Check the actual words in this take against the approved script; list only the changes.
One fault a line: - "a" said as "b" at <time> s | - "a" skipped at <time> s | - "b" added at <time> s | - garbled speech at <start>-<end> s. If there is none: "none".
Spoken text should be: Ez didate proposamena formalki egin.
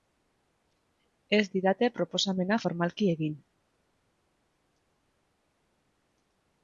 none